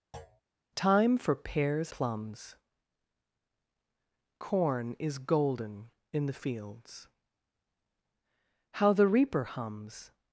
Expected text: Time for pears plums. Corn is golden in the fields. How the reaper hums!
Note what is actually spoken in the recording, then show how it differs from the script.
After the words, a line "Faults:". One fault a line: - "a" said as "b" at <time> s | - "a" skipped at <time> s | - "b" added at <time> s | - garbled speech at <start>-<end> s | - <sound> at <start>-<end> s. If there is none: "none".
Time for pears plums. Corn is golden in the fields. How the reaper hums!
Faults:
- thud at 0.1-0.4 s